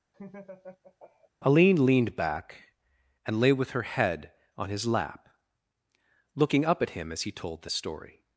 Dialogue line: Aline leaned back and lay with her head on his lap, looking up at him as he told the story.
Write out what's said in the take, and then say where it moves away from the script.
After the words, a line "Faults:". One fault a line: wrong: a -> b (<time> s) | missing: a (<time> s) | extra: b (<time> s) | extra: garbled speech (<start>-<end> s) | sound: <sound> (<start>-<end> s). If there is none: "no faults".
Aline leaned back and lay with her head on his lap, looking up at him as he told the story.
Faults:
sound: laugh (0.1-1.3 s)